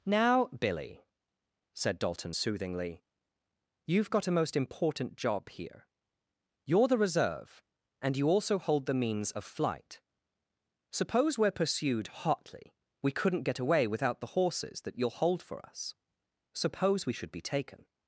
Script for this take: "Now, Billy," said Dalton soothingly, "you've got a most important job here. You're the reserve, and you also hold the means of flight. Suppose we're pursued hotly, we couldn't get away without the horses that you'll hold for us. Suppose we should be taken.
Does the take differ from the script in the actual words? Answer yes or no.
no